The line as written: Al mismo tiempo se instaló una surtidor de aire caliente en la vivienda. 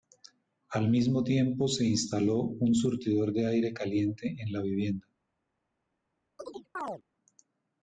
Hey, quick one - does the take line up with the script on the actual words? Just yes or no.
no